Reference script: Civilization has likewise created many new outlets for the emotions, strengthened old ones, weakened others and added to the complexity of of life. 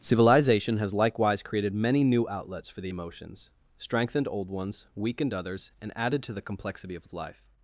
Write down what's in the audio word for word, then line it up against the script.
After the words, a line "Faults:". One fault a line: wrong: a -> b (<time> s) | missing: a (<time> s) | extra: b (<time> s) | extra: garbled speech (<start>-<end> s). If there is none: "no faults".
Civilization has likewise created many new outlets for the emotions, strengthened old ones, weakened others and added to the complexity of of life.
Faults:
no faults